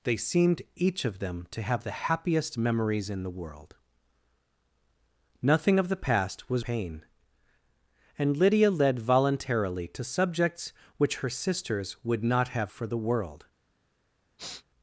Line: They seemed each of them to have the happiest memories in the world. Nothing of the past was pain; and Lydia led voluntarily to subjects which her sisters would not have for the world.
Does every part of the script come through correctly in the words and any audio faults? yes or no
no